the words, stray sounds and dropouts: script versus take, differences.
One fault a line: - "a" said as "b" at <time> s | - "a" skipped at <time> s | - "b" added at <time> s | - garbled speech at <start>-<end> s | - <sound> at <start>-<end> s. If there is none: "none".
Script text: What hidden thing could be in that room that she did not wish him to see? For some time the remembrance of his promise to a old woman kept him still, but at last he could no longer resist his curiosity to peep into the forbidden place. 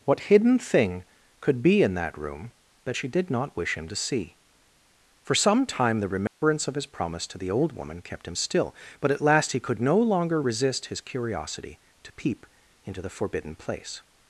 - dropout at 6.3-6.4 s
- "a" said as "the" at 7.4 s